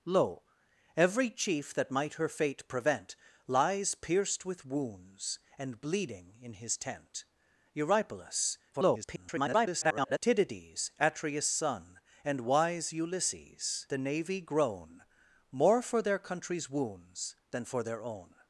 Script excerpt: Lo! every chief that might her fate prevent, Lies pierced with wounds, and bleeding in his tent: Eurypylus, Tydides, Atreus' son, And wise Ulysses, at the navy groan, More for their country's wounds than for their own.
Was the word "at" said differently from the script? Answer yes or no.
yes